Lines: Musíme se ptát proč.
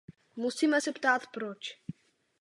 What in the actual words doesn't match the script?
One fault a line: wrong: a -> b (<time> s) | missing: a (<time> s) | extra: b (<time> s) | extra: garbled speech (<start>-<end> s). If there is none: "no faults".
no faults